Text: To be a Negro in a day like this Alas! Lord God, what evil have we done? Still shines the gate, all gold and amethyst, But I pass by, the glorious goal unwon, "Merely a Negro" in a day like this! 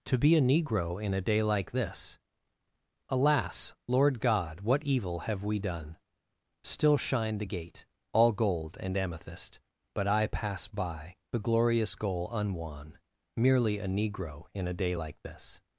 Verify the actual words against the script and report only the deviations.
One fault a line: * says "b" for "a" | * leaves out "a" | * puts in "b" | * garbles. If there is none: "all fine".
* says "shine" for "shines"